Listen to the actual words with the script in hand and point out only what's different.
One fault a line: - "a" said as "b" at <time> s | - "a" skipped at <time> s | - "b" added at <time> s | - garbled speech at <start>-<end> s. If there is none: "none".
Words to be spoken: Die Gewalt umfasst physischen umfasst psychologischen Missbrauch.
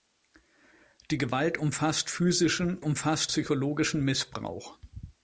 none